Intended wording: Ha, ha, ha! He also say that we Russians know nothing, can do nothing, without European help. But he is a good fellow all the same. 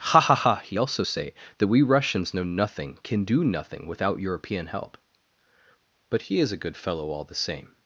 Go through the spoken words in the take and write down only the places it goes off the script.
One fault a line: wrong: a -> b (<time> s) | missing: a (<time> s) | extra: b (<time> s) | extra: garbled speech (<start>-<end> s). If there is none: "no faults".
no faults